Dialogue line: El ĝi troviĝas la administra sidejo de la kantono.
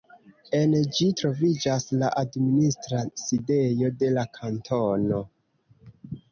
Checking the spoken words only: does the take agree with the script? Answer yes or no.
no